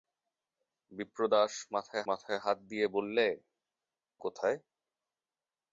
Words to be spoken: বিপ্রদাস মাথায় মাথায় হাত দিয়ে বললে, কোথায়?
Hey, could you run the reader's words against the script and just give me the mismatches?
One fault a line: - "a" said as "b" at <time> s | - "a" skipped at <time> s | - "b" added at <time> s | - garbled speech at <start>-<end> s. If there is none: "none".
none